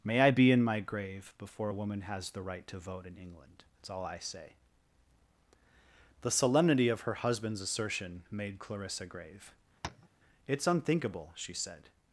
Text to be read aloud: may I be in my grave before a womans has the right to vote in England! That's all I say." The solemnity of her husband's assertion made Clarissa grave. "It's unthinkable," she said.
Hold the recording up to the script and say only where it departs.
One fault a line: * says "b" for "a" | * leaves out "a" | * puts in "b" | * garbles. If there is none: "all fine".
* says "woman" for "womans"